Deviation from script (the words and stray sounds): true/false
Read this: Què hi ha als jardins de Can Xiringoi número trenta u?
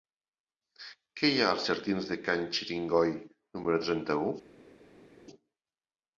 false